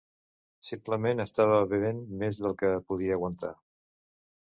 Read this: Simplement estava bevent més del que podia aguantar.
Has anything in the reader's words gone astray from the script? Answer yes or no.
no